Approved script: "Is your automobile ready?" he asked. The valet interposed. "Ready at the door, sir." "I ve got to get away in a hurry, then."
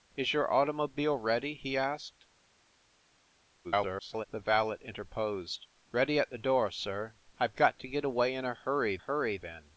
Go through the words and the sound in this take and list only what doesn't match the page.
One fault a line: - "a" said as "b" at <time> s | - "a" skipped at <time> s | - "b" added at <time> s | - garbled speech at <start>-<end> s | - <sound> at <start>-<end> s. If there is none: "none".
- garbled speech at 3.6-4.3 s
- "hurry" added at 9.0 s